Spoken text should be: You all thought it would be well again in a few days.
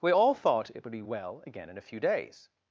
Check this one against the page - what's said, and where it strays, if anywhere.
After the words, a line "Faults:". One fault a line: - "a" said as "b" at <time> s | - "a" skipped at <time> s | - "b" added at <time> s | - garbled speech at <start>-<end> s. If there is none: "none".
We all thought it would be well again in a few days.
Faults:
- "You" said as "We" at 0.0 s